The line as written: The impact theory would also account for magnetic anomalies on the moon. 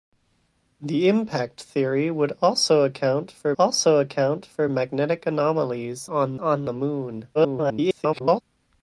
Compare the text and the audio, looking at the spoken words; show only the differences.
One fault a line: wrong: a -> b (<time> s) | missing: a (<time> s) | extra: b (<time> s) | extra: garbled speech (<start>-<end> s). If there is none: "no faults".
extra: also account for (3.6 s)
extra: on (6.4 s)
extra: garbled speech (7.3-8.4 s)